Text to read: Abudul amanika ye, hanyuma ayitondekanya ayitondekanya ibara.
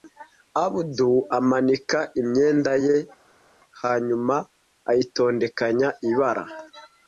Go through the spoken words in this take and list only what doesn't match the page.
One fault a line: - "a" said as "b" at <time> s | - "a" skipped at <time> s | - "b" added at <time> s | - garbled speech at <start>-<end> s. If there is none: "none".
- "imyenda" added at 2.2 s
- "ayitondekanya" skipped at 5.9 s